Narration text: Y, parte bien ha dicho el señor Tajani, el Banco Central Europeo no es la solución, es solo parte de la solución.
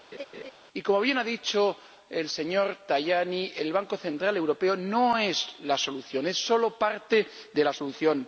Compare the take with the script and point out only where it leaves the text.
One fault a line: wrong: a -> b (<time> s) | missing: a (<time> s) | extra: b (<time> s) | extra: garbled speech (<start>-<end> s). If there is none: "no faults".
wrong: parte -> como (0.8 s)